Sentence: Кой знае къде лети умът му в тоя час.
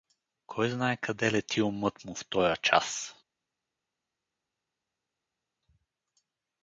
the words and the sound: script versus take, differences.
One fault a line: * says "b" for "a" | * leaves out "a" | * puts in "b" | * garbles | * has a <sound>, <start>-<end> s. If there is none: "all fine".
all fine